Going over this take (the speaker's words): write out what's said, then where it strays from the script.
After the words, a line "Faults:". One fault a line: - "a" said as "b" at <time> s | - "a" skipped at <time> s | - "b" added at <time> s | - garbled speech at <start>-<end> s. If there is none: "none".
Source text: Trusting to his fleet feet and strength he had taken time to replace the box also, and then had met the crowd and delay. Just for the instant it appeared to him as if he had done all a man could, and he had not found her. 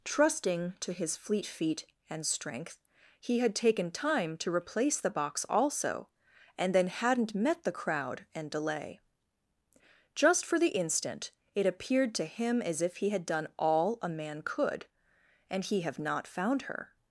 Trusting to his fleet feet and strength he had taken time to replace the box also, and then hadn't met the crowd and delay. Just for the instant it appeared to him as if he had done all a man could, and he have not found her.
Faults:
- "had" said as "hadn't" at 6.9 s
- "had" said as "have" at 15.8 s